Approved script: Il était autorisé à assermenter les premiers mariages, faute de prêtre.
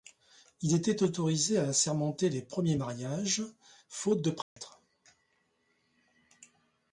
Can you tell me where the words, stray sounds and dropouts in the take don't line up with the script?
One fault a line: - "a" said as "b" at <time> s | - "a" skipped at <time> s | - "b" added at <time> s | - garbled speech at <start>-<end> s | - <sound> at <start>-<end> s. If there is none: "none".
- dropout at 4.4-4.6 s